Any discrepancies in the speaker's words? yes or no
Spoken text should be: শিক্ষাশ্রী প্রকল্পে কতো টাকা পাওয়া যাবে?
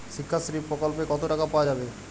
no